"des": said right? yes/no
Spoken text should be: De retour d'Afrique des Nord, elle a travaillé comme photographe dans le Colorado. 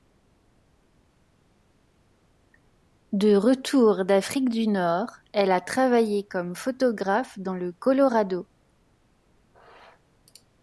no